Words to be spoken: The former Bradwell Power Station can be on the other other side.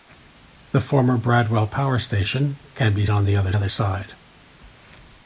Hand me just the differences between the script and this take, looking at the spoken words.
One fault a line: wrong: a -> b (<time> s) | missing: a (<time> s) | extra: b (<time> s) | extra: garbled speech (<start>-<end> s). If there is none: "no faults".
no faults